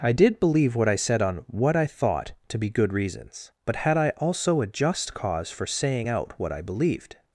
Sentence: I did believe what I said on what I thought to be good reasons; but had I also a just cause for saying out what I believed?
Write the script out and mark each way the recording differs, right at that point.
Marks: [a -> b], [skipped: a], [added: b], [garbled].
I did believe what I said on what I thought to be good reasons; but had I also a just cause for saying out what I believed?